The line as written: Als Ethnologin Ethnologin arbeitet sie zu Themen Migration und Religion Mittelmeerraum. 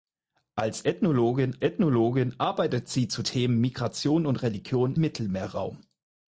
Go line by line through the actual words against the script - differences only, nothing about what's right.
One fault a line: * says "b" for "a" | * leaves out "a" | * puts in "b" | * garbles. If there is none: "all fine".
all fine